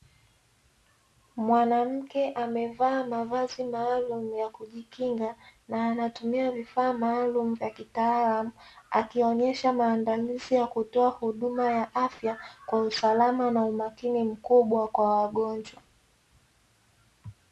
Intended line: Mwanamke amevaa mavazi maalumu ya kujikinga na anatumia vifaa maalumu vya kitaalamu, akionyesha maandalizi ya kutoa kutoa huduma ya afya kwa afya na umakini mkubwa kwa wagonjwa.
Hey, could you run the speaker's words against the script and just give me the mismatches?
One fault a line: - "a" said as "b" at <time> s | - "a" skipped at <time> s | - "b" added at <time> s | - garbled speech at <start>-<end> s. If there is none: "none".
- "kutoa" skipped at 11.1 s
- "afya" said as "usalama" at 12.8 s